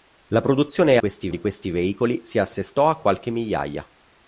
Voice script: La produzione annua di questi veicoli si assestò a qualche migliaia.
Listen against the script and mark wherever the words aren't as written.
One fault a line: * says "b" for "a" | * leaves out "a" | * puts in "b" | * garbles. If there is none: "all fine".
* says "questi" for "annua"